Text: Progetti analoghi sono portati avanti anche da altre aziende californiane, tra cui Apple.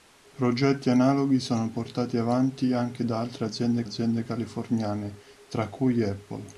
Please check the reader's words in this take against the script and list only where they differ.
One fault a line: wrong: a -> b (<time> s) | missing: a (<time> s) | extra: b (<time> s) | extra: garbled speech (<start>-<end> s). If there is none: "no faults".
extra: aziende (3.8 s)